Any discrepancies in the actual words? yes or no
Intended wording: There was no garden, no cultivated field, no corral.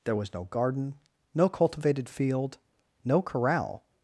no